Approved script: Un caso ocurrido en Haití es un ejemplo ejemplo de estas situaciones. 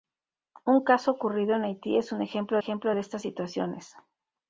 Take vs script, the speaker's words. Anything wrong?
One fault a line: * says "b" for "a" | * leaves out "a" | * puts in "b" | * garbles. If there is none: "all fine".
all fine